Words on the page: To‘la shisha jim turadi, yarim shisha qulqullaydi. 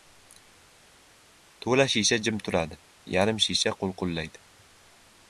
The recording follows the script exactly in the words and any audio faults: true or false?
true